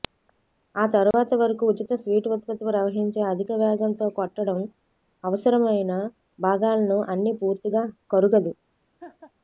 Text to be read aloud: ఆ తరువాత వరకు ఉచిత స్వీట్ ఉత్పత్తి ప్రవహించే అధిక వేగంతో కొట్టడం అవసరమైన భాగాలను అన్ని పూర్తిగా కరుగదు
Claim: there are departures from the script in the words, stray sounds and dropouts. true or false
true